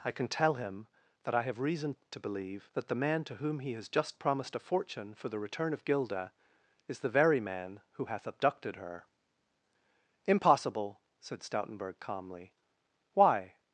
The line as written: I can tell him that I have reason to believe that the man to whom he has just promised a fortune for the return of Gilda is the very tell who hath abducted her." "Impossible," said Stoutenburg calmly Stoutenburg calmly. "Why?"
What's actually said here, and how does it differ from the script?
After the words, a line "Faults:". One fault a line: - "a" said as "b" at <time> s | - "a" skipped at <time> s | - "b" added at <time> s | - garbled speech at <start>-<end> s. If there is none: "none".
I can tell him that I have reason to believe that the man to whom he has just promised a fortune for the return of Gilda is the very man who hath abducted her." "Impossible," said Stoutenburg calmly. "Why?"
Faults:
- "tell" said as "man" at 7.4 s
- "Stoutenburg calmly" skipped at 12.5 s